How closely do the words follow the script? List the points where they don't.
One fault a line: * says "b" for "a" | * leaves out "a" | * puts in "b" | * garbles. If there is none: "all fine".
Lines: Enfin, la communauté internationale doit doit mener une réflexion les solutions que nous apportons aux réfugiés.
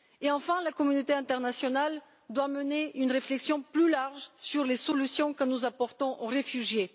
* leaves out "doit"
* puts in "plus large sur"